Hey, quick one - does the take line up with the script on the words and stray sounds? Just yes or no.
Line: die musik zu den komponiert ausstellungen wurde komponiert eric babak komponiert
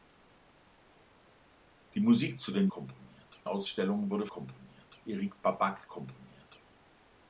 yes